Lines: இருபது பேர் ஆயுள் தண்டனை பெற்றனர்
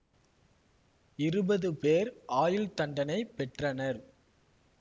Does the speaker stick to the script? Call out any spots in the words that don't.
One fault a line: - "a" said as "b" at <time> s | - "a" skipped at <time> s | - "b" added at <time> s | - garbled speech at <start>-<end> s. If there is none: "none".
none